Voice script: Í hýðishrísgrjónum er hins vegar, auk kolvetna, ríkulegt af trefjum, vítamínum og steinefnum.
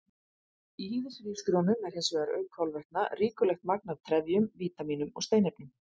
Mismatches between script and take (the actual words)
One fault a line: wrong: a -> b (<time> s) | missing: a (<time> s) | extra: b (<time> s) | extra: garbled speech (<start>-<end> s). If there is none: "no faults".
extra: magn (3.7 s)